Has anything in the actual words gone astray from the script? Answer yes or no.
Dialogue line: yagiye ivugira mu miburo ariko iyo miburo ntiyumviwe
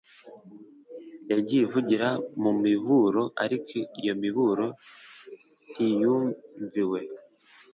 no